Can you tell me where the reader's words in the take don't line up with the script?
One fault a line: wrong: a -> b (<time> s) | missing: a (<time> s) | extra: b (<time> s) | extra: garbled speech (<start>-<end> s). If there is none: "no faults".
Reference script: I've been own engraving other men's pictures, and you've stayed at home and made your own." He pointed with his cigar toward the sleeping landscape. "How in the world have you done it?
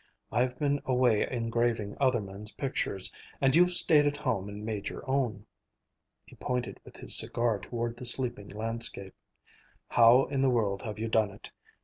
wrong: own -> away (0.8 s)